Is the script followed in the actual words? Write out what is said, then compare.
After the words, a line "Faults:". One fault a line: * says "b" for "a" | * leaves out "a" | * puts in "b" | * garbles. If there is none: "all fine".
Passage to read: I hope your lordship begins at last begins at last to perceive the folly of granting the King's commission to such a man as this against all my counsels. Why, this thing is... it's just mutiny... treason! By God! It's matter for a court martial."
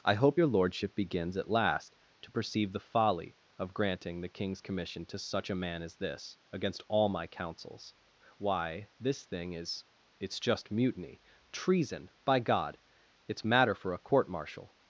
I hope your lordship begins at last to perceive the folly of granting the King's commission to such a man as this against all my counsels. Why, this thing is... it's just mutiny... treason! By God! It's matter for a court martial."
Faults:
* leaves out "begins at last"